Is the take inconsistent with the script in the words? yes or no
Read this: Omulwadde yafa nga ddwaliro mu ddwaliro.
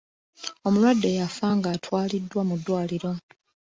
yes